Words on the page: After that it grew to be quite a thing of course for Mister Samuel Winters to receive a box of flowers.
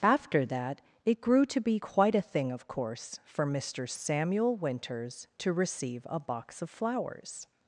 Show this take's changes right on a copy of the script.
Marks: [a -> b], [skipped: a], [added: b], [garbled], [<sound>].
After that it grew to be quite a thing of course for Mister Samuel Winters to receive a box of flowers.